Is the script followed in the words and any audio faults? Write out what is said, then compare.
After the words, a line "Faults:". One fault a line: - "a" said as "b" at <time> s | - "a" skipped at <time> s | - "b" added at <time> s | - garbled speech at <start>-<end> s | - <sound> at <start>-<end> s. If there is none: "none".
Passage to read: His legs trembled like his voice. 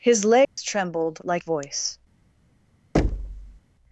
His legs trembled like voice.
Faults:
- dropout at 0.4-0.6 s
- "his" skipped at 1.4 s
- thud at 2.9-3.6 s